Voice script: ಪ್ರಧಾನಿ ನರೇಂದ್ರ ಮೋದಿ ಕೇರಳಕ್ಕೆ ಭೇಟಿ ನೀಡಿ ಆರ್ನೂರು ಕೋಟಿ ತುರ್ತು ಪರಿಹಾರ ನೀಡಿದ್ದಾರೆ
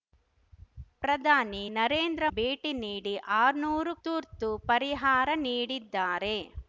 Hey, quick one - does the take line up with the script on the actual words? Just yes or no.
no